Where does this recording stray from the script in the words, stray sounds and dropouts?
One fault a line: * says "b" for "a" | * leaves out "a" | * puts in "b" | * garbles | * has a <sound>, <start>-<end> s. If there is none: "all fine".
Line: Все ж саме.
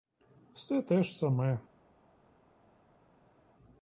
* puts in "те"